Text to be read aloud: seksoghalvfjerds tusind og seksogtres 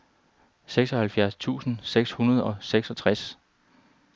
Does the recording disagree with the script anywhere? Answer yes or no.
yes